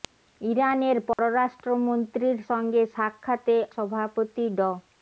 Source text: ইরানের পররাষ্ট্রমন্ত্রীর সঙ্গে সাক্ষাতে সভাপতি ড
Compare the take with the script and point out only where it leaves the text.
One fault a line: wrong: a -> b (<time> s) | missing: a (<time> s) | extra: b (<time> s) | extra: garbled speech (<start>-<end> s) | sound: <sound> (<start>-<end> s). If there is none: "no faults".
sound: dropout (1.1-1.2 s)